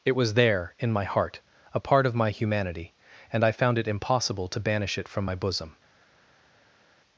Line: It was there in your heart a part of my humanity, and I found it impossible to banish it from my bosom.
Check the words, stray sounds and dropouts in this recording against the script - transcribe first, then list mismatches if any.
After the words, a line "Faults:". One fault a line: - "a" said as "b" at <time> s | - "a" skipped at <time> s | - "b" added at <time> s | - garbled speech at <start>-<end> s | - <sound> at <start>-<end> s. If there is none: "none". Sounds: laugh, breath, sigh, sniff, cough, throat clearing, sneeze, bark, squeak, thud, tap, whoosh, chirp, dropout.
It was there in my heart a part of my humanity, and I found it impossible to banish it from my bosom.
Faults:
- "your" said as "my" at 0.9 s